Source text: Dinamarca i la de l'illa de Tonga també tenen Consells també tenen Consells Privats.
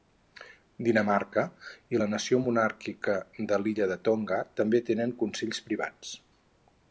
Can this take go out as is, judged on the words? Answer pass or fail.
fail